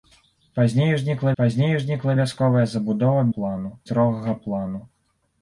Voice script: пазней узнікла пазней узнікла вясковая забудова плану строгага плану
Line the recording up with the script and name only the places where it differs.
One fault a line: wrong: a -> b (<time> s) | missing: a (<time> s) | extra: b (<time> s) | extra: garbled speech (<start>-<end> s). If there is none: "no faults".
no faults